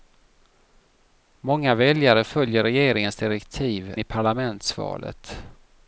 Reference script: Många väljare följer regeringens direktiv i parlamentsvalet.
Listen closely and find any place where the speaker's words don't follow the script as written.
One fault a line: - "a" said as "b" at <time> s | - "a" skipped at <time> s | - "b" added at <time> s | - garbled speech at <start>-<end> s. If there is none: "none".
none